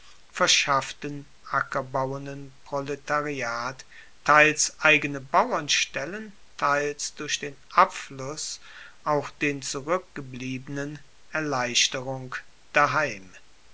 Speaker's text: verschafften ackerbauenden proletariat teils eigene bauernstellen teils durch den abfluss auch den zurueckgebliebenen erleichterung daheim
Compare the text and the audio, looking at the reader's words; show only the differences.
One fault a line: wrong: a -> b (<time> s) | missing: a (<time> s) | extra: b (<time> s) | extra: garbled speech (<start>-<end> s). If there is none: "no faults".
no faults